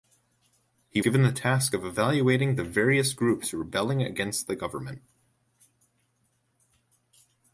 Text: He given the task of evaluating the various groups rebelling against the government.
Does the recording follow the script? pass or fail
pass